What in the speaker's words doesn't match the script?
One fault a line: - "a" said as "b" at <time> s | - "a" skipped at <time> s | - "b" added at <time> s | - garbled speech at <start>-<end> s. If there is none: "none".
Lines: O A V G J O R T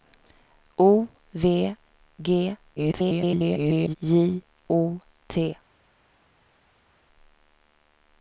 - "A" skipped at 1.1 s
- garbled speech at 2.8-4.0 s
- "R" skipped at 5.0 s